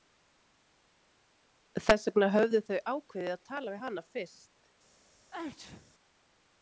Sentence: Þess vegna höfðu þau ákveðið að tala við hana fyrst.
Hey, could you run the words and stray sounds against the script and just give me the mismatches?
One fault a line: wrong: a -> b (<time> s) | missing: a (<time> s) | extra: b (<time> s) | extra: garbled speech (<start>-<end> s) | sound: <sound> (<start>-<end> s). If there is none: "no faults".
sound: sneeze (5.3-5.9 s)